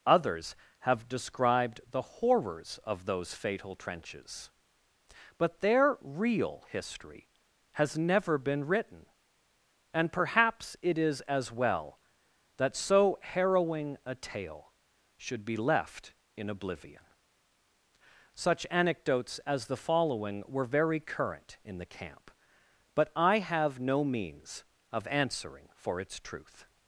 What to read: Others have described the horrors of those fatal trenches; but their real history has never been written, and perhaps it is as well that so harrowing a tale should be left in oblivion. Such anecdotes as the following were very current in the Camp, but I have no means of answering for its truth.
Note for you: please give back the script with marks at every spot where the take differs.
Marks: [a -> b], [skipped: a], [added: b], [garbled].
Others have described the horrors of those fatal trenches; but their real history has never been written, and perhaps it is as well that so harrowing a tale should be left in oblivion. Such anecdotes as the following were very current in the Camp, but I have no means of answering for its truth.